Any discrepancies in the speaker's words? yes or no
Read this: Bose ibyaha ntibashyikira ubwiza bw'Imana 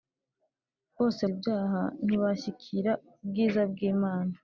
no